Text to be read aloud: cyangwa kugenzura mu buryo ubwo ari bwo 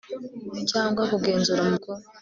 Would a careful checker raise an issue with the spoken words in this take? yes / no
yes